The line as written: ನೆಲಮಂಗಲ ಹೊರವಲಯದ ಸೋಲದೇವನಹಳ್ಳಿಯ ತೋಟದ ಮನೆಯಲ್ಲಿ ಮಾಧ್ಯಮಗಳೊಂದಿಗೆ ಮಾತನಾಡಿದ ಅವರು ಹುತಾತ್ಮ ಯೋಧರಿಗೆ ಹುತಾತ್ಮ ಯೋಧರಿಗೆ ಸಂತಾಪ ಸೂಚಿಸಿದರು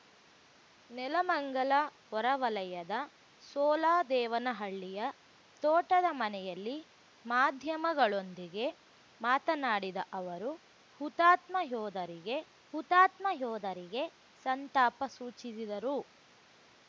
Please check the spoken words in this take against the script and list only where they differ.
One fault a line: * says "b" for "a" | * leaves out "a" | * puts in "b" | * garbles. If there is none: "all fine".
all fine